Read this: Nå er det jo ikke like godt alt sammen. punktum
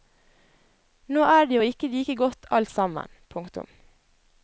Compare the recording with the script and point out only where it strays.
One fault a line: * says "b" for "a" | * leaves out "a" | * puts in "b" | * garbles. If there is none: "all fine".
all fine